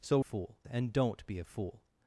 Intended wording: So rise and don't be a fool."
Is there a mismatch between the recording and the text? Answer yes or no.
yes